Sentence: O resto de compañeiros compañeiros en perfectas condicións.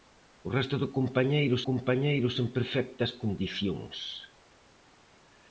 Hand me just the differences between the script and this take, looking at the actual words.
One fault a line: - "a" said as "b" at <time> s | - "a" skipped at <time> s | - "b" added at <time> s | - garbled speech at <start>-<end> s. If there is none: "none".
none